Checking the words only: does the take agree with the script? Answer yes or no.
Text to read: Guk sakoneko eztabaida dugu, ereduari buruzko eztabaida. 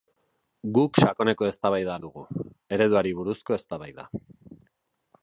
yes